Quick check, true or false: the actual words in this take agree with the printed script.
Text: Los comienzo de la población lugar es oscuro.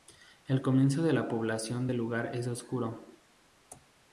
false